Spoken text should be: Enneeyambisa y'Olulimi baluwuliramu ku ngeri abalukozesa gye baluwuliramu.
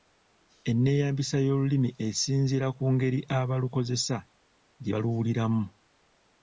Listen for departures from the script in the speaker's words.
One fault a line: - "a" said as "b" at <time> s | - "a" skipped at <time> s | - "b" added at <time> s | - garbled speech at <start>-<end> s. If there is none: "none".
- "baluwuliramu" said as "esinziira" at 2.1 s